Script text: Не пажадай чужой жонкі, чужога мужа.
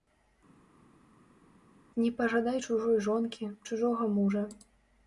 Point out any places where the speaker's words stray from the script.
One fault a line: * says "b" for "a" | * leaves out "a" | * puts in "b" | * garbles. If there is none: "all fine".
all fine